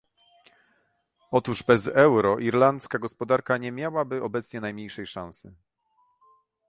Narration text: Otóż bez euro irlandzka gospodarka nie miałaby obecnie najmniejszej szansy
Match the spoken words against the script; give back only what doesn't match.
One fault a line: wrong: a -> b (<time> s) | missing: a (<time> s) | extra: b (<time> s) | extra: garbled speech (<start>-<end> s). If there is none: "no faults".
no faults